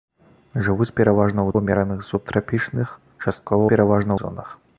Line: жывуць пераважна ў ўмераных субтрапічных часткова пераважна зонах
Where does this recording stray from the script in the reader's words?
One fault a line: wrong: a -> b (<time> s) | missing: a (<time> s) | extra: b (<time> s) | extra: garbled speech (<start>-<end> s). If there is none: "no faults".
no faults